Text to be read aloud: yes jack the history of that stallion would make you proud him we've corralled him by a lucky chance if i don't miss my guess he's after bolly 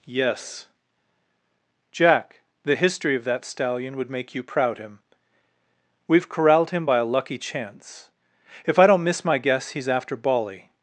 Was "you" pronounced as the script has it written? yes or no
yes